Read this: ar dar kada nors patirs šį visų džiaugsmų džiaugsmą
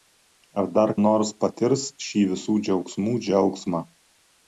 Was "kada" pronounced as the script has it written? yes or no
no